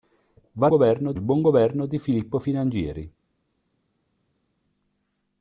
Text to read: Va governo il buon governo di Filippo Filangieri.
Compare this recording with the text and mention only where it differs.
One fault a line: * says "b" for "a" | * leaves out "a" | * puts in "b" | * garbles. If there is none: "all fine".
all fine